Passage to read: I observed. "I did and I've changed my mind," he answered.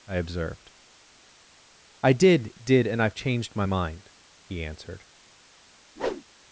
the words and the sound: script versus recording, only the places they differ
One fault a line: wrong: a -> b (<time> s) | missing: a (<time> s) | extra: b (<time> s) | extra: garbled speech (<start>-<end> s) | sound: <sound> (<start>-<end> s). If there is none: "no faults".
extra: did (2.6 s)
sound: whoosh (6.0-6.2 s)